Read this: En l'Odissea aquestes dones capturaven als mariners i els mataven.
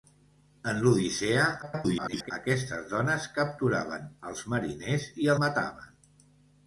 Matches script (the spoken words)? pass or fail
fail